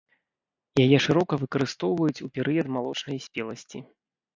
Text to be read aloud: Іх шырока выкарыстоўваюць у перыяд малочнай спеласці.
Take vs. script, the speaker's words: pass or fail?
fail